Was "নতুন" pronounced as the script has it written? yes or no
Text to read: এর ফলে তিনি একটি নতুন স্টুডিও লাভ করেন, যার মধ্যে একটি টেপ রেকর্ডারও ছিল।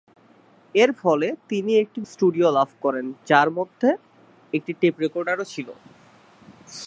no